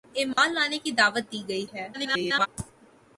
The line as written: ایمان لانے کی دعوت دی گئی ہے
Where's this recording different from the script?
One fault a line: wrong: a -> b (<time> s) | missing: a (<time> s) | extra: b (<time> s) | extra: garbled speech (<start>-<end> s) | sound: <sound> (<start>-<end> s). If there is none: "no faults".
sound: dropout (0.3-0.4 s)
extra: garbled speech (1.9-2.5 s)